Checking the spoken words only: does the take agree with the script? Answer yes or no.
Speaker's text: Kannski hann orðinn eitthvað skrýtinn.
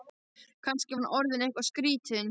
yes